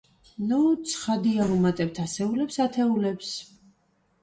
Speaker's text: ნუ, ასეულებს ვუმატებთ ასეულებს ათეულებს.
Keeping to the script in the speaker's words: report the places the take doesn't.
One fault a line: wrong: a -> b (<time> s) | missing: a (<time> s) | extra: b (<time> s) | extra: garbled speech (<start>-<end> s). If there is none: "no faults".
wrong: ასეულებს -> ცხადია (0.9 s)